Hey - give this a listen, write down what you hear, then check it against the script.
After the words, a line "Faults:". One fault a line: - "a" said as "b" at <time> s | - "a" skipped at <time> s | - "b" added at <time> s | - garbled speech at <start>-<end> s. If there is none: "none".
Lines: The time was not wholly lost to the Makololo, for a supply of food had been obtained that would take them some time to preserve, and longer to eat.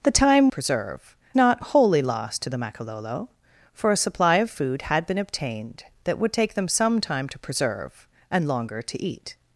The time preserve not wholly lost to the Makololo, for a supply of food had been obtained that would take them some time to preserve, and longer to eat.
Faults:
- "was" said as "preserve" at 0.5 s